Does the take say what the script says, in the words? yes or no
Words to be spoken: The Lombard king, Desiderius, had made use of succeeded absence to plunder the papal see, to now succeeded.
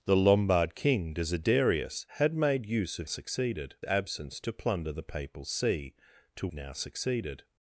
yes